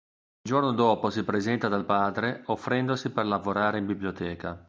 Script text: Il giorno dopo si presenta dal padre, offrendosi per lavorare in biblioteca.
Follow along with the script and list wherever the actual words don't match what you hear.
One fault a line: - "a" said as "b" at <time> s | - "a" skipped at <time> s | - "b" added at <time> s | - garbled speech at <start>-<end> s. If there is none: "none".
none